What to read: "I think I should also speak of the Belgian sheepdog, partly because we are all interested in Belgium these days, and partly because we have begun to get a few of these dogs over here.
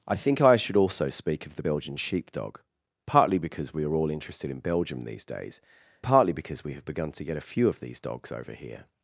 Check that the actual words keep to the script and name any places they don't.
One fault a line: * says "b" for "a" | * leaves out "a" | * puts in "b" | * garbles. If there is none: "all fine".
* leaves out "and"